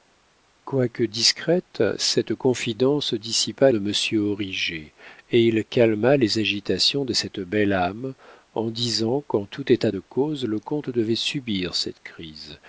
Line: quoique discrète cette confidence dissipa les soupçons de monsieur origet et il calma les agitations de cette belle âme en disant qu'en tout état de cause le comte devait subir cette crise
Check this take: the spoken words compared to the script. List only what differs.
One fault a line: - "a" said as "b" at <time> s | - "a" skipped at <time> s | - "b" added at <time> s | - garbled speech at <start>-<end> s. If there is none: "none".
- "les soupçons" skipped at 3.7 s